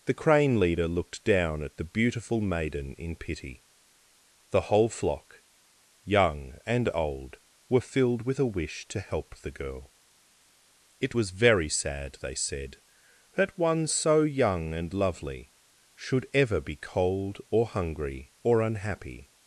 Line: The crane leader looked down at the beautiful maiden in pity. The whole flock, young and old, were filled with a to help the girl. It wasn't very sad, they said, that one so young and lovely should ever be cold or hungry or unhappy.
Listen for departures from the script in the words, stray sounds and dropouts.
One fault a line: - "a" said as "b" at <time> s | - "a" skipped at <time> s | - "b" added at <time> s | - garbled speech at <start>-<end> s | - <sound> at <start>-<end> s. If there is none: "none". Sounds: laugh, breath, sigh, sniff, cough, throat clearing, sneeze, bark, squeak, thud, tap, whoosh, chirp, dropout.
- "wish" added at 8.5 s
- "wasn't" said as "was" at 11.1 s